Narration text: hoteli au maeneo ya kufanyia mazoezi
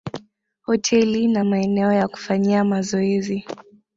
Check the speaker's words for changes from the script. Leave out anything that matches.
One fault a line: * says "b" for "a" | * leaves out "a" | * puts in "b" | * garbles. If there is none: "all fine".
* says "na" for "au"